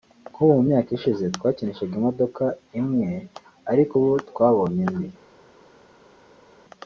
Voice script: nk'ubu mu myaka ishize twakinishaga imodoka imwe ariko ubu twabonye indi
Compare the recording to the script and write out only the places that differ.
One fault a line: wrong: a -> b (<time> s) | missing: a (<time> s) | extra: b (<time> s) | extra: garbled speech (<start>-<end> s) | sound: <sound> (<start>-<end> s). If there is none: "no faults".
no faults